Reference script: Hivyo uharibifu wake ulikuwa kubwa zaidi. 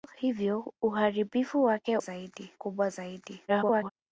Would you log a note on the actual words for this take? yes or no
yes